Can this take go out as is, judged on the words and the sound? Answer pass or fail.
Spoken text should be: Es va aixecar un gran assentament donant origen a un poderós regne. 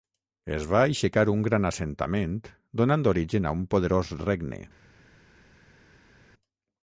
pass